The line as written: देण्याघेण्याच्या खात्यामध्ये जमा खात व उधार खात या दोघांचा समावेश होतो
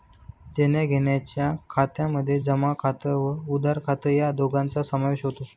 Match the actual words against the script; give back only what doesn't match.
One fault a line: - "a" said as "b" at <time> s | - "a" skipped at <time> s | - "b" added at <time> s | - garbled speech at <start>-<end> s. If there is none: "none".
none